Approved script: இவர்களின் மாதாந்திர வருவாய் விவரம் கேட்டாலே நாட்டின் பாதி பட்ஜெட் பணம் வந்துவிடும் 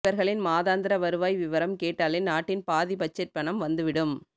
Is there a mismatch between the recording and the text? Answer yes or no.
no